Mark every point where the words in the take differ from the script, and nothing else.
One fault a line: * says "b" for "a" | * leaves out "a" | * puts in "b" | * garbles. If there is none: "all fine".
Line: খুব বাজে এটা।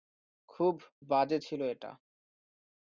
* puts in "ছিল"